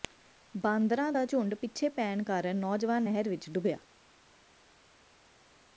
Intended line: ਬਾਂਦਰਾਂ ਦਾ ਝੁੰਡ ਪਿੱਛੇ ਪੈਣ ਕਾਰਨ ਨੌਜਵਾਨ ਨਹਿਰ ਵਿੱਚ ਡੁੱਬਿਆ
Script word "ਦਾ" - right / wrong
right